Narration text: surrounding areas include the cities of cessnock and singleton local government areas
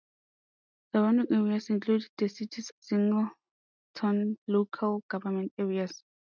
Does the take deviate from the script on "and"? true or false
true